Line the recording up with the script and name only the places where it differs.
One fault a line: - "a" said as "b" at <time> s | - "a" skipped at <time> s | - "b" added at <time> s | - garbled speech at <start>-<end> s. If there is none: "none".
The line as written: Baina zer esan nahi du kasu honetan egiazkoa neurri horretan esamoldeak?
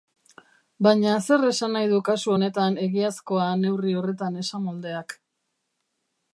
none